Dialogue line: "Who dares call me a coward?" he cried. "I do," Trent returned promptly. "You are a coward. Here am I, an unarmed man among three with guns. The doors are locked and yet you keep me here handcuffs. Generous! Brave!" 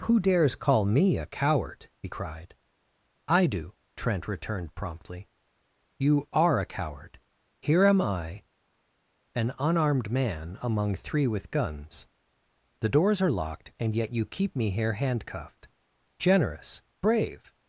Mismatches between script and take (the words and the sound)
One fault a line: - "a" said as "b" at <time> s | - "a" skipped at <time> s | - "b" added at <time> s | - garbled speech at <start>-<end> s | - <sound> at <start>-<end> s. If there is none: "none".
- "handcuffs" said as "handcuffed" at 14.9 s